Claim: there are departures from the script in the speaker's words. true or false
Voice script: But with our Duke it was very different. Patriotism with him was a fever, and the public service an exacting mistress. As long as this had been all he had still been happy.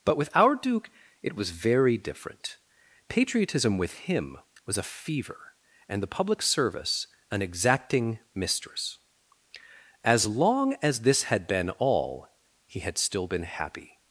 false